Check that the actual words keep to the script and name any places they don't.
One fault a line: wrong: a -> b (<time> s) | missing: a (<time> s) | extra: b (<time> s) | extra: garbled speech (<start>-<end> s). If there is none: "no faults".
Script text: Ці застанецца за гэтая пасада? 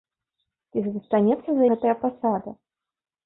no faults